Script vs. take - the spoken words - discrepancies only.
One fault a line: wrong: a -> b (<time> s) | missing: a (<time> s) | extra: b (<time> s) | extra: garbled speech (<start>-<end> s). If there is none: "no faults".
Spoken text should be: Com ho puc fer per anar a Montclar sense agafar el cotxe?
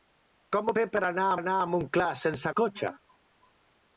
missing: puc (0.7 s)
extra: anar a (1.4 s)
missing: agafar (2.5 s)